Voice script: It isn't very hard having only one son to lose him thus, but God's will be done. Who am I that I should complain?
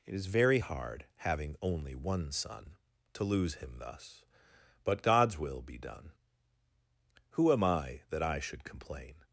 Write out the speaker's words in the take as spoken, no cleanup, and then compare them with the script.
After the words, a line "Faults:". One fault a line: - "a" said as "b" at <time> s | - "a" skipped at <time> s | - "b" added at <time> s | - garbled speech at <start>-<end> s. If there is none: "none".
It is very hard having only one son to lose him thus, but God's will be done. Who am I that I should complain?
Faults:
- "isn't" said as "is" at 0.1 s